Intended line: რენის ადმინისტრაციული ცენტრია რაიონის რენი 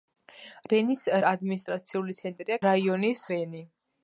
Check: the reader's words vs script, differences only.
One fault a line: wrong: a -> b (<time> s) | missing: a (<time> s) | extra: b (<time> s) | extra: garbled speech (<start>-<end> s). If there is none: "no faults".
no faults